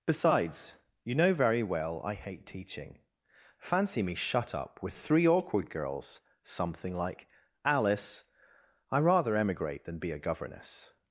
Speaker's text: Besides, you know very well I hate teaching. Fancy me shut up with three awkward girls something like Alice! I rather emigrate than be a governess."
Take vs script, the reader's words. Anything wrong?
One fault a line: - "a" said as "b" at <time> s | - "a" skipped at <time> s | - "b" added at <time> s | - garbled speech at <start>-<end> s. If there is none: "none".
none